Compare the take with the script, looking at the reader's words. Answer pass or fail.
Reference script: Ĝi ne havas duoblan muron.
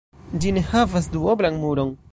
pass